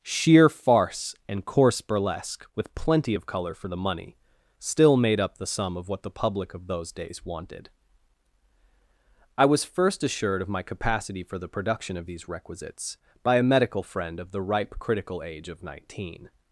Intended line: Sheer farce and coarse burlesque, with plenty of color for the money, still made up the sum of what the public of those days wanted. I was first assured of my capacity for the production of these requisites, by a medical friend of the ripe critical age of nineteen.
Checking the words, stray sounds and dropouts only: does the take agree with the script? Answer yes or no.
yes